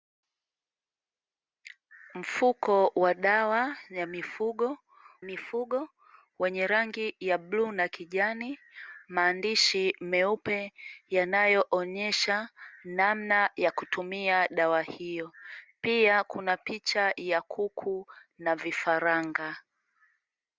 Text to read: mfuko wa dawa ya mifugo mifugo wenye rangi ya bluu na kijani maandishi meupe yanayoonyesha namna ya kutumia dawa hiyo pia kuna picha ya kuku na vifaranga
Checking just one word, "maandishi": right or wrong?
right